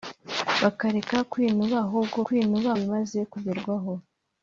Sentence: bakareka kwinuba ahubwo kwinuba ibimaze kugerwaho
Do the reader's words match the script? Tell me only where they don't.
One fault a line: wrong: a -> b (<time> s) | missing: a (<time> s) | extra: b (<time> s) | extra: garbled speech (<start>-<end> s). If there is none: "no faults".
no faults